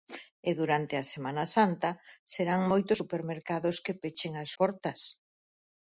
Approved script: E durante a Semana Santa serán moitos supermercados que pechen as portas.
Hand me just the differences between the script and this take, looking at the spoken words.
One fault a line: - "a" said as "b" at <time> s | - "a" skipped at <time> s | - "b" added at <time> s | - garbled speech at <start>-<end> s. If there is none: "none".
none